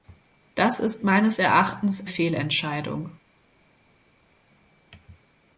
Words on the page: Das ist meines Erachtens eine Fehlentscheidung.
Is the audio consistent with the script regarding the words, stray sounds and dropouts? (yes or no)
no